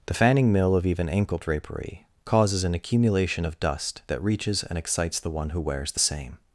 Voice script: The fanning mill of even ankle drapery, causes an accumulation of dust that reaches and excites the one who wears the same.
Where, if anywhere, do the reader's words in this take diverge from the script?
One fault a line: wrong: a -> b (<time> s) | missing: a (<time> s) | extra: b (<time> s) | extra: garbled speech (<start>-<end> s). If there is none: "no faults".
no faults